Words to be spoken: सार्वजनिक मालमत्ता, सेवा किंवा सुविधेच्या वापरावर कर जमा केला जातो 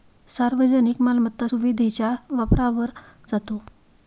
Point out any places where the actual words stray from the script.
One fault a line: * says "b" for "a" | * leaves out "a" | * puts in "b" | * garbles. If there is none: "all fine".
* leaves out "सेवा किंवा"
* leaves out "कर जमा केला"